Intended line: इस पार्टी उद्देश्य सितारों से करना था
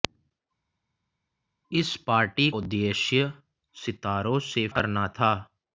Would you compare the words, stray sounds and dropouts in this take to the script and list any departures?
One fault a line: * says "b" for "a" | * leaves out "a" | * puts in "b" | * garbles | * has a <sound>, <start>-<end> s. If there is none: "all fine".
all fine